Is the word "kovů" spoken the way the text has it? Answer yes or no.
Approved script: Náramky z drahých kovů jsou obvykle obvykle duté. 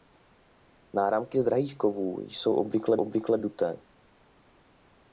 yes